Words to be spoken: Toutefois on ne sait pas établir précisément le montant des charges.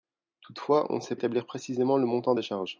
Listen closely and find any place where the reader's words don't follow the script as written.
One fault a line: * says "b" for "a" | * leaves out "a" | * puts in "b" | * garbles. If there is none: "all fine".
* leaves out "pas"